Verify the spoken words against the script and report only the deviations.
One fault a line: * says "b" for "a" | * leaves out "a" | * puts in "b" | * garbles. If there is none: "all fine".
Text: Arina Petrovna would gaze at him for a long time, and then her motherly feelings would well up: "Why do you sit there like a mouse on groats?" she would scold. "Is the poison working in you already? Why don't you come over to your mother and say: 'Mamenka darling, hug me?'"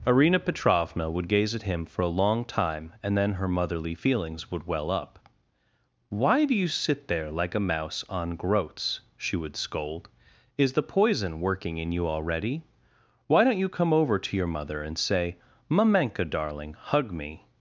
all fine